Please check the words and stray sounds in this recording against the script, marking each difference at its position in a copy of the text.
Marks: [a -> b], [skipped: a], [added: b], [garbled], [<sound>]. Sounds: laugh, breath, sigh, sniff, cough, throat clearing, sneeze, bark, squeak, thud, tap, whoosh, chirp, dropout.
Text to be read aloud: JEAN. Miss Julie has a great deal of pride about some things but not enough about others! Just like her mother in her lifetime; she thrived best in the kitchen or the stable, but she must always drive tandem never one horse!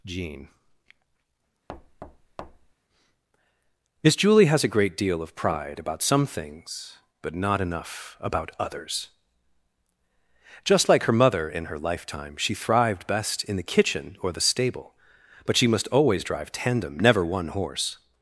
JEAN. [thud] Miss Julie has a great deal of pride about some things but not enough about others! Just like her mother in her lifetime; she thrived best in the kitchen or the stable, but she must always drive tandem never one horse!